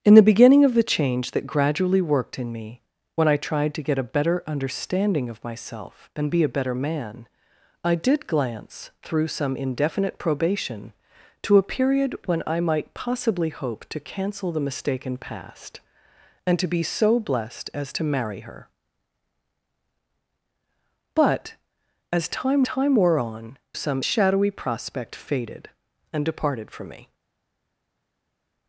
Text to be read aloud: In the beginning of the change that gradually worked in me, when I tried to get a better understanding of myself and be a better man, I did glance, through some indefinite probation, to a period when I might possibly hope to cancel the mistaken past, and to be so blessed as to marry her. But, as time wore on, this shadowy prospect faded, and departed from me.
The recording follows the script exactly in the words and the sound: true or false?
false